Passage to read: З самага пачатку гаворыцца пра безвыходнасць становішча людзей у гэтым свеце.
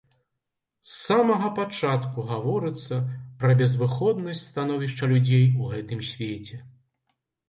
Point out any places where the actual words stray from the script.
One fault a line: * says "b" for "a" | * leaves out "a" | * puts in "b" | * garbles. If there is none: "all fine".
all fine